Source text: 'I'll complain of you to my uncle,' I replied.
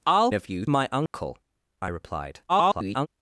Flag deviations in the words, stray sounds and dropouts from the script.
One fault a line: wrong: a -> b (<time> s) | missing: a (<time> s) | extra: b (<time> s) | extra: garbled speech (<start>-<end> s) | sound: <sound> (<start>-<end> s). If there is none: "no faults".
missing: complain (0.3 s)
missing: to (0.6 s)
sound: dropout (1.1-1.1 s)
extra: garbled speech (2.5-3.1 s)